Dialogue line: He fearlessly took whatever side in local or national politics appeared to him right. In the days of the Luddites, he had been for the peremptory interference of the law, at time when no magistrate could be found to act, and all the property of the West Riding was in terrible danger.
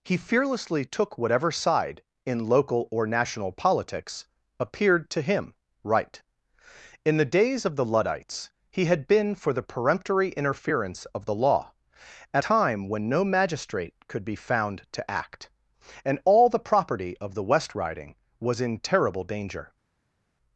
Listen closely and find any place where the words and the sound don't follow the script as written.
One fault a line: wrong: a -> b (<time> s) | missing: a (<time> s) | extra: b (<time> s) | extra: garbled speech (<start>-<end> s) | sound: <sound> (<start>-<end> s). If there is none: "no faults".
no faults